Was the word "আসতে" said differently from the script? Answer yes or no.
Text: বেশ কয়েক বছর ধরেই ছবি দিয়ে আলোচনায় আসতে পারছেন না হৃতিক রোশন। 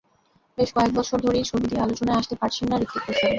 no